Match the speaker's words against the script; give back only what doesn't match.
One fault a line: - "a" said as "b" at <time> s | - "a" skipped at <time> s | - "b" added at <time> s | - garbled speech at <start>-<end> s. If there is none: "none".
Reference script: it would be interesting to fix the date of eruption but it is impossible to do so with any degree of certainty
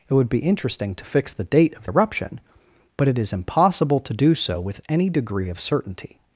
none